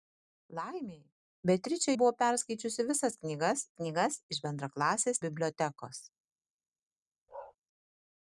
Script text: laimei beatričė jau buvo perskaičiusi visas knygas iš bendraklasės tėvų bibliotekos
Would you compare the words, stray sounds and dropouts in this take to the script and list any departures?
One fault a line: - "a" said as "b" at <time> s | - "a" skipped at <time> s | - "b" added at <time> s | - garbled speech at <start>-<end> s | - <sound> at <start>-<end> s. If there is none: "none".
- "jau" skipped at 1.9 s
- "knygas" added at 3.8 s
- "tėvų" skipped at 5.2 s
- bark at 7.3-7.6 s